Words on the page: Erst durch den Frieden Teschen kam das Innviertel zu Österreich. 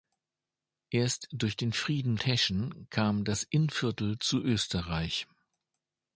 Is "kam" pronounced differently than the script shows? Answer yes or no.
no